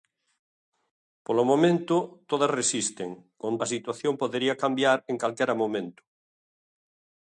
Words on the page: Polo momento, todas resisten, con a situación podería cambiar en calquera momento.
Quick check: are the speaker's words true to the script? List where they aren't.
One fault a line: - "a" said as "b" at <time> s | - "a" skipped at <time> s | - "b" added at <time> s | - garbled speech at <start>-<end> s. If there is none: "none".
none